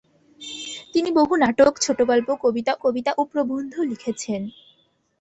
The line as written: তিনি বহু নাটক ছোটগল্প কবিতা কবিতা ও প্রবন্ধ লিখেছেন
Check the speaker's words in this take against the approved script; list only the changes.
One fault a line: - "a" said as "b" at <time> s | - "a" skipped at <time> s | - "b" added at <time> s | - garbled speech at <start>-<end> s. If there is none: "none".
none